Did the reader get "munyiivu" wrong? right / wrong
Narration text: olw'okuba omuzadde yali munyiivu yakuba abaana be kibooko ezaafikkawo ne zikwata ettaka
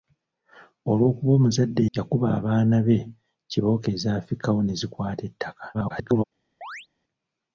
wrong